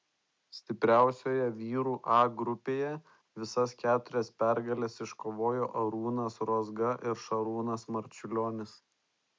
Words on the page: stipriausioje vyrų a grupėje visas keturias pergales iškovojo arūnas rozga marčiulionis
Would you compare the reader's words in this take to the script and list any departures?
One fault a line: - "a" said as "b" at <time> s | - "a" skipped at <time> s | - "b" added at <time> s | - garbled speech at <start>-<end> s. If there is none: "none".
- "ir šarūnas" added at 7.1 s